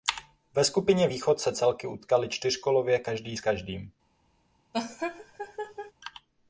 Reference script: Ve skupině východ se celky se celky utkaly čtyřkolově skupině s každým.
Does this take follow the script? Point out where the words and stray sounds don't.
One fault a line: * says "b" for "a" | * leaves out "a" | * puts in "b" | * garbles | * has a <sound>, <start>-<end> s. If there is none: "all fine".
* leaves out "se celky"
* says "každý" for "skupině"
* has a laugh, 4.7-5.9 s